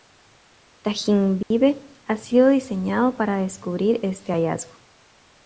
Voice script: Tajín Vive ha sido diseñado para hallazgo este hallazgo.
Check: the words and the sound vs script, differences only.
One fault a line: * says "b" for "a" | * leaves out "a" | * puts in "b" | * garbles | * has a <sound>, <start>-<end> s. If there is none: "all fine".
* has a dropout, 1.4-1.5 s
* says "descubrir" for "hallazgo"